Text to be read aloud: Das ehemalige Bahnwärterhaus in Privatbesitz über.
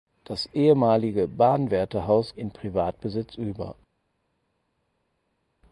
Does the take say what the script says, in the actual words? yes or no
yes